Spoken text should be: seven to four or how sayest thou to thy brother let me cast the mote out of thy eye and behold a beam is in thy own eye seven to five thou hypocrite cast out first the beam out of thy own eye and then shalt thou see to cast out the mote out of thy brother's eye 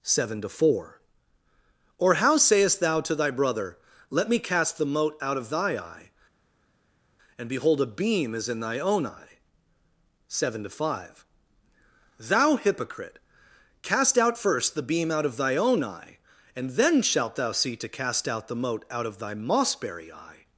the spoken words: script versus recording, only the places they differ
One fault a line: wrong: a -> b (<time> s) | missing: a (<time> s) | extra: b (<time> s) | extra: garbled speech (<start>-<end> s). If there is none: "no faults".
wrong: brother's -> mossberry (19.3 s)